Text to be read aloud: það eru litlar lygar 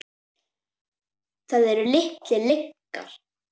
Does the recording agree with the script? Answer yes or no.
yes